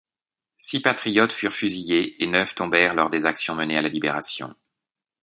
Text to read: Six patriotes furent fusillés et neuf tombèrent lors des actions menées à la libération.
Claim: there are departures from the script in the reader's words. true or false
false